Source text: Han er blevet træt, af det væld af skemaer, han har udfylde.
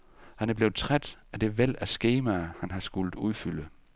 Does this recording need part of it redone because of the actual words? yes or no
yes